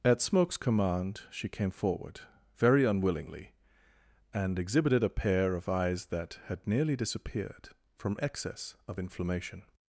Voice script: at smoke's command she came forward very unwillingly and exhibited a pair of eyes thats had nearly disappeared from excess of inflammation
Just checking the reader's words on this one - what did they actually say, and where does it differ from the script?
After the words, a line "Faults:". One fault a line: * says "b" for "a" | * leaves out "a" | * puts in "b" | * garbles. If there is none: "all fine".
at smoke's command she came forward very unwillingly and exhibited a pair of eyes that had nearly disappeared from excess of inflammation
Faults:
* says "that" for "thats"